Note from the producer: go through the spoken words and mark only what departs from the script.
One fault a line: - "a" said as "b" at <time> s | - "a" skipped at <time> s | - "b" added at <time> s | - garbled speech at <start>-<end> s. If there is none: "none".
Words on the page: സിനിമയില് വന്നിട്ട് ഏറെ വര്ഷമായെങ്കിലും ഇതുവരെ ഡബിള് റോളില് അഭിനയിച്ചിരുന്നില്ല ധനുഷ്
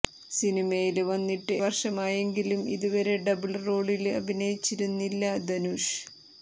- "ഏറെ" skipped at 1.6 s